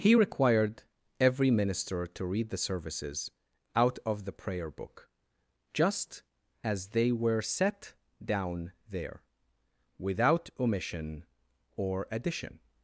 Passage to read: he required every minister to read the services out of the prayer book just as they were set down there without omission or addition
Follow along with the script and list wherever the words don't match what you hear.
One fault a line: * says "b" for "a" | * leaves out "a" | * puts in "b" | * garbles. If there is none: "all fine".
all fine